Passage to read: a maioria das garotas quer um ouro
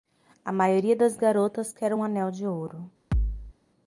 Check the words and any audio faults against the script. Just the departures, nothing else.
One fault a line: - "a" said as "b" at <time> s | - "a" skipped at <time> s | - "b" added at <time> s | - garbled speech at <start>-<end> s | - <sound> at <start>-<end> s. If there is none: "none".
- "anel de" added at 2.0 s
- thud at 3.1-3.5 s